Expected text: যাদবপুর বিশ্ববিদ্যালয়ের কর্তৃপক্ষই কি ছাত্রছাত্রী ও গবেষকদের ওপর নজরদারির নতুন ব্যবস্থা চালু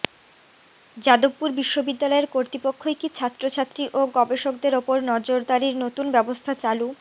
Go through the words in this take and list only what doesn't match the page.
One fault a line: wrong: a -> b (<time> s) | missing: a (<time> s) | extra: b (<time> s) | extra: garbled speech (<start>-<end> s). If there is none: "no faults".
no faults